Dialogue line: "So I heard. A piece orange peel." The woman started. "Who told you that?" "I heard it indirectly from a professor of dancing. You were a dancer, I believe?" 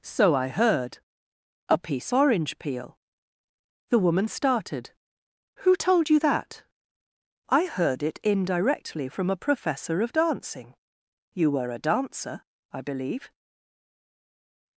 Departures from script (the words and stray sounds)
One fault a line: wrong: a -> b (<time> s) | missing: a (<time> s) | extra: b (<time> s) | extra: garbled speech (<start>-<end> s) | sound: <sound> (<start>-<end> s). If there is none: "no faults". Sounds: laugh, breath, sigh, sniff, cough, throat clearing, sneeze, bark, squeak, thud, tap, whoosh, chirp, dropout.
no faults